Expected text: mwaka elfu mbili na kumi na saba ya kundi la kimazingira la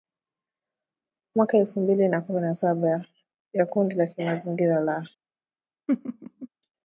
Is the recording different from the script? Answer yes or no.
no